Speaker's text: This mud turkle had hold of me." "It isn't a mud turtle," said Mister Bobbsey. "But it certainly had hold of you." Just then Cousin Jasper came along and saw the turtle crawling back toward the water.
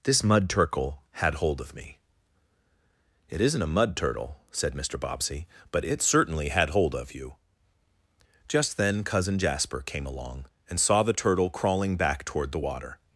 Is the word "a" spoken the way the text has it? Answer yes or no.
yes